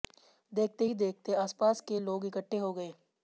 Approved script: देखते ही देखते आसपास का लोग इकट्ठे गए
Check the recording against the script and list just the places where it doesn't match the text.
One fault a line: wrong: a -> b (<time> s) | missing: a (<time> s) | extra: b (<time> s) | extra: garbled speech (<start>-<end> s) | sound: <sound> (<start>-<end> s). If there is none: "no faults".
wrong: का -> के (1.8 s)
extra: हो (2.6 s)